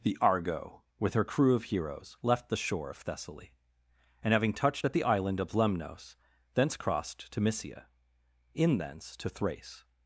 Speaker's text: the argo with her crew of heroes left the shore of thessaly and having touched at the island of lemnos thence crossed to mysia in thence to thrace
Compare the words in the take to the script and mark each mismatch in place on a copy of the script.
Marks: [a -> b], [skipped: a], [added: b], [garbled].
the argo with her crew of heroes left the shore of thessaly and having touched at the island of lemnos thence crossed to mysia in thence to thrace